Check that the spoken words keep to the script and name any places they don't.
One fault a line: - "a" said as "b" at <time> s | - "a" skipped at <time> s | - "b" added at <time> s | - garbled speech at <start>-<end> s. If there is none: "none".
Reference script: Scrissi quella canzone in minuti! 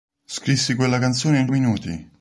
none